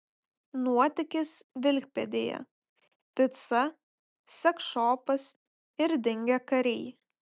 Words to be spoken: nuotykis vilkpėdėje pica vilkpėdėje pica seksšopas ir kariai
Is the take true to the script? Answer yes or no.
no